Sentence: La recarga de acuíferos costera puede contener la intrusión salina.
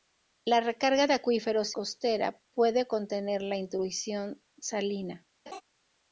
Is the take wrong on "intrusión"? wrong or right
right